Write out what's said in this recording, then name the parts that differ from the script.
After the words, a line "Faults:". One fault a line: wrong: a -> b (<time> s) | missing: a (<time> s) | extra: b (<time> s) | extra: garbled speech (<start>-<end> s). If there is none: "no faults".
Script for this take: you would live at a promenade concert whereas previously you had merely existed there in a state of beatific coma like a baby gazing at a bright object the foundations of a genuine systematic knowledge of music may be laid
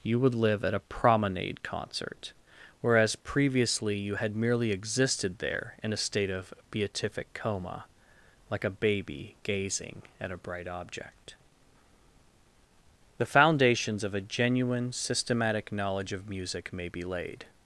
you would live at a promenade concert whereas previously you had merely existed there in a state of beatific coma like a baby gazing at a bright object the foundations of a genuine systematic knowledge of music may be laid
Faults:
no faults